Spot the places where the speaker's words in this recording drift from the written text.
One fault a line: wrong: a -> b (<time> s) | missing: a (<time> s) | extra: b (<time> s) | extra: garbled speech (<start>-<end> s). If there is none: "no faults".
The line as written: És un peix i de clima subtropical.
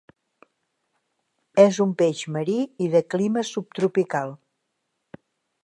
extra: marí (2.4 s)